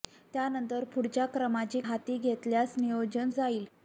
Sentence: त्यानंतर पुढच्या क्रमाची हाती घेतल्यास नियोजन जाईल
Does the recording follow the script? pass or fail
pass